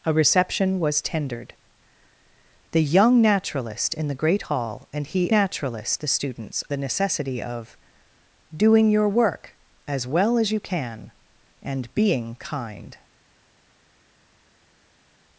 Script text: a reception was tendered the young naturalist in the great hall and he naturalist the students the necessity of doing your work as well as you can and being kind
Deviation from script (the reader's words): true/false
false